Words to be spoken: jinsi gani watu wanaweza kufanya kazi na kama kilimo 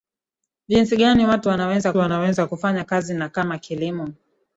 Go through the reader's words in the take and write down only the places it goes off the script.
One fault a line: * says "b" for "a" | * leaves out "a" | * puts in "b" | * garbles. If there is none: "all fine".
* puts in "wanaweza"